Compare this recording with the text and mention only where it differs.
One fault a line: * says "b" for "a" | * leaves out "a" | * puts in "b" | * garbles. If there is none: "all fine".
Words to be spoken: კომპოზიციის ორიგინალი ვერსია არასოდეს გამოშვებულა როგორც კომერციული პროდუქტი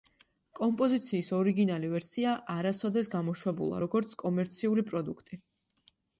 all fine